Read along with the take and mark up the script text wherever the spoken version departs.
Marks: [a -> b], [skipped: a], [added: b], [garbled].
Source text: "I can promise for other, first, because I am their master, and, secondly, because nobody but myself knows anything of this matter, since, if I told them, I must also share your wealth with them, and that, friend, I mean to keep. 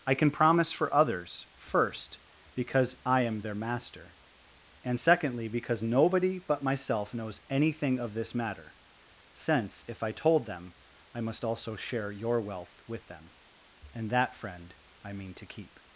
"I can promise for [other, -> others] first, because I am their master, and, secondly, because nobody but myself knows anything of this matter, since, if I told them, I must also share your wealth with them, and that, friend, I mean to keep.